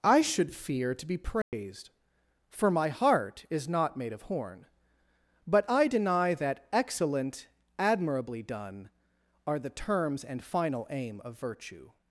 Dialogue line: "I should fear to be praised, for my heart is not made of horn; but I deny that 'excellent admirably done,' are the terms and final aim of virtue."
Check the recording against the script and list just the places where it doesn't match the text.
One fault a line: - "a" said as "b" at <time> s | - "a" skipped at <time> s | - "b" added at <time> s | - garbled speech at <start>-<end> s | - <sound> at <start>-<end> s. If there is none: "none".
- dropout at 1.4-1.5 s